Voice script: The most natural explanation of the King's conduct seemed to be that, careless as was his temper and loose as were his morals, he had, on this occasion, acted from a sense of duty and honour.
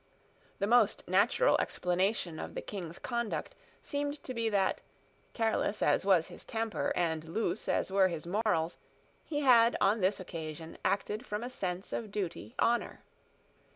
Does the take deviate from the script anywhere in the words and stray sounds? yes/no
yes